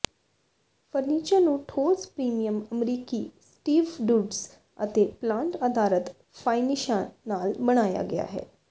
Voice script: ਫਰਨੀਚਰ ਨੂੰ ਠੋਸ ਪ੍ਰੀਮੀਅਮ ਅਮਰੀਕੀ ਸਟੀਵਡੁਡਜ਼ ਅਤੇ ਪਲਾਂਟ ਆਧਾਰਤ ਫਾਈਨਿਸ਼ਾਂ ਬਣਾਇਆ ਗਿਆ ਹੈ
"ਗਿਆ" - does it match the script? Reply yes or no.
yes